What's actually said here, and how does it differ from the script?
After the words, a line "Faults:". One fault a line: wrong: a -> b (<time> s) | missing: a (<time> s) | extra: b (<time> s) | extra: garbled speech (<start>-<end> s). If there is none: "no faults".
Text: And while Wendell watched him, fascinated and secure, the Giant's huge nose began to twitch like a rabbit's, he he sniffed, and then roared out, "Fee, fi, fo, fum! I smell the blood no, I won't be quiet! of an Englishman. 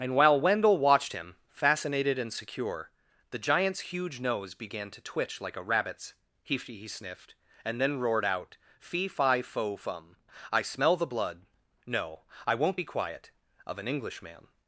And while Wendell watched him, fascinated and secure, the Giant's huge nose began to twitch like a rabbit's, he he sniffed, and then roared out, "Fee, fi, fo, fum! I smell the blood no, I won't be quiet! of an Englishman.
Faults:
no faults